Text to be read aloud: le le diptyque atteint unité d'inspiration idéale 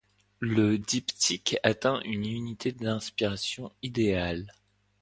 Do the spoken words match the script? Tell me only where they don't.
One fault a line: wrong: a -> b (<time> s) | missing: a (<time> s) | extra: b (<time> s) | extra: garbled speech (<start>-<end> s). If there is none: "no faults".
missing: le (0.8 s)
extra: une (2.0 s)